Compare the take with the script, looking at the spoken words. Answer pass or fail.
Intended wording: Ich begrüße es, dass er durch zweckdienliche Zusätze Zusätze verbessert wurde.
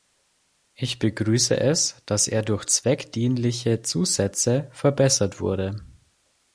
fail